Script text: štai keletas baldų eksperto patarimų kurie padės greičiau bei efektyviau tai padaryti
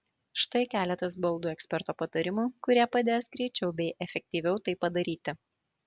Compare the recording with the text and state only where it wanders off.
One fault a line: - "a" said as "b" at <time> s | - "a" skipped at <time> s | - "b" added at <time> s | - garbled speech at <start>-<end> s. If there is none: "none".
none